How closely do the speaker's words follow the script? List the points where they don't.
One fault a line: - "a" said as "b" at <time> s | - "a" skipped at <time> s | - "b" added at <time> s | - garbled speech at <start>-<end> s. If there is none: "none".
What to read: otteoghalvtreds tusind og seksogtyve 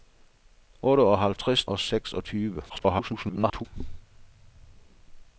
- "tusind" skipped at 1.6 s
- garbled speech at 2.7-3.7 s